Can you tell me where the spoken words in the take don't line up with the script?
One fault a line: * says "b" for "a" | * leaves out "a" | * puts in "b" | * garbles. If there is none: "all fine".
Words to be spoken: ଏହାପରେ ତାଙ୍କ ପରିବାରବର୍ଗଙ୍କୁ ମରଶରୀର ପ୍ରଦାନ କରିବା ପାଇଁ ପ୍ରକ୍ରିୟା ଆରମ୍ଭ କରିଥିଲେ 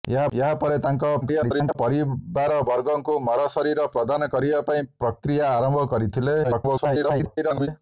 * garbles
* garbles